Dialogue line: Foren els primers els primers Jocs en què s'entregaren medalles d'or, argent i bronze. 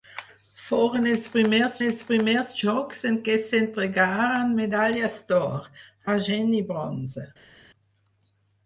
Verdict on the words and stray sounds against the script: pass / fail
pass